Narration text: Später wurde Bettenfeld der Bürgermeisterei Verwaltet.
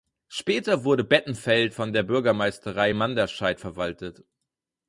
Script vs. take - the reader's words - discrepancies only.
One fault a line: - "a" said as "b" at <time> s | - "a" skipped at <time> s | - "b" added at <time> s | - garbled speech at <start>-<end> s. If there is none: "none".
- "von" added at 1.7 s
- "Manderscheid" added at 2.9 s